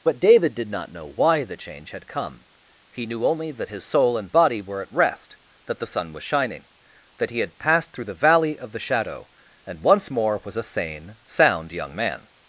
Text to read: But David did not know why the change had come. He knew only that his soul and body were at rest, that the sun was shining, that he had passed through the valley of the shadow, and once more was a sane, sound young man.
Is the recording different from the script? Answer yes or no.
no